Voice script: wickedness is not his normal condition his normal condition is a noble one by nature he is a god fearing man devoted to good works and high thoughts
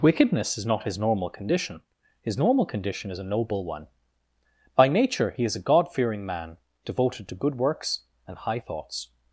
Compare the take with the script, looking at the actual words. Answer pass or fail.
pass